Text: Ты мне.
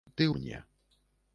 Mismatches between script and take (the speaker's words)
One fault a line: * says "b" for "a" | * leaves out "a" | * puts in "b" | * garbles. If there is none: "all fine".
all fine